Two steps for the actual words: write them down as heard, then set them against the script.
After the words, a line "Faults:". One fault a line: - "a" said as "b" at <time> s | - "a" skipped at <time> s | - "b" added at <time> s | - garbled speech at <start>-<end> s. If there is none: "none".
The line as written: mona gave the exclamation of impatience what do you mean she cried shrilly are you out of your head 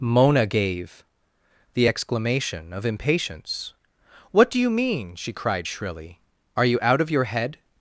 mona gave the exclamation of impatience what do you mean she cried shrilly are you out of your head
Faults:
none